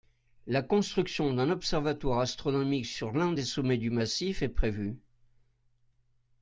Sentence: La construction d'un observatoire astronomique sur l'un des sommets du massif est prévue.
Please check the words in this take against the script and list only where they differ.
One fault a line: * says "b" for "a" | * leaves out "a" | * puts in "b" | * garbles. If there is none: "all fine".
all fine